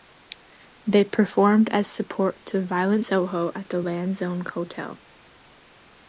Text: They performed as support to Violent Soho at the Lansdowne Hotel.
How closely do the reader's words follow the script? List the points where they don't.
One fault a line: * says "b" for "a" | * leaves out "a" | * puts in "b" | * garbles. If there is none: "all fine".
all fine